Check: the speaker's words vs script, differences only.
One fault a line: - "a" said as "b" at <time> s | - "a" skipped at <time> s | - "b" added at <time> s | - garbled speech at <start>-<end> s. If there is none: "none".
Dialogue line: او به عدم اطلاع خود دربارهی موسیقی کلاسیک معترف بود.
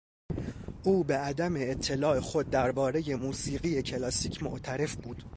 none